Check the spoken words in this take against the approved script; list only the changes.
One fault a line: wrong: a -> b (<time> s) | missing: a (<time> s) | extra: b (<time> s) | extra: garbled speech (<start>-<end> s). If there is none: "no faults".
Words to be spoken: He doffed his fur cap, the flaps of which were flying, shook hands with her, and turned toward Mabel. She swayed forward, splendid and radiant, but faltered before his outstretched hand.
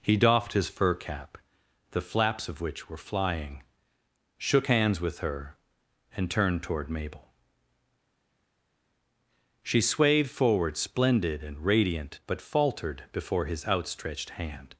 no faults